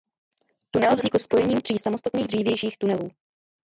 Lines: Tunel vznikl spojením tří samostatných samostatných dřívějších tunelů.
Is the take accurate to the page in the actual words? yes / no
no